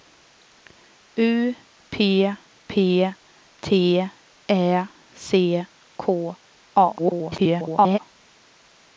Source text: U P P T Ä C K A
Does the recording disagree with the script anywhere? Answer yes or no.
yes